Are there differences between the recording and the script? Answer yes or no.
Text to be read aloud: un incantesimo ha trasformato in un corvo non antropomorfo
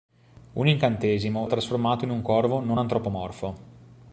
no